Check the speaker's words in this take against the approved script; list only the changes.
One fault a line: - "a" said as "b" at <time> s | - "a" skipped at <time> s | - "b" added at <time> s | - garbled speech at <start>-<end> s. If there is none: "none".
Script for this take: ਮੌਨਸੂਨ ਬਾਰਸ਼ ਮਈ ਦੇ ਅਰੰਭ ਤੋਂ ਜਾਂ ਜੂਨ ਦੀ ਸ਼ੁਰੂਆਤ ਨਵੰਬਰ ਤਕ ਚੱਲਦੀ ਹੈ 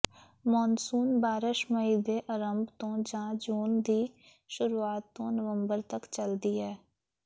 - "ਤੋਂ" added at 5.1 s